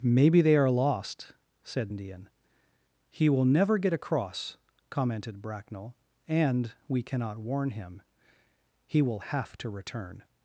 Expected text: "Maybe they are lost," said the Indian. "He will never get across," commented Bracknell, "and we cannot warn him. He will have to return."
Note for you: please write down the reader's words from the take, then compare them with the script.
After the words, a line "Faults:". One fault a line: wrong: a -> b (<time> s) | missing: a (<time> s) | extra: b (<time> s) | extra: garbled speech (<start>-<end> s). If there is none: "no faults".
"Maybe they are lost," said Indian. "He will never get across," commented Bracknell, "and we cannot warn him. He will have to return."
Faults:
missing: the (1.9 s)